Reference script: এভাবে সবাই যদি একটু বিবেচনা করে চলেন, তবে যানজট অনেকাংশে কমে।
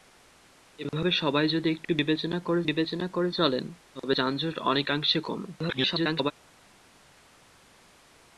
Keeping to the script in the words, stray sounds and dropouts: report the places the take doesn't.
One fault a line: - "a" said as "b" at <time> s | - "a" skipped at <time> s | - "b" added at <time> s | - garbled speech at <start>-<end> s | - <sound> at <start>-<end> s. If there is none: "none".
- "বিবেচনা করে" added at 2.6 s
- garbled speech at 5.6-6.3 s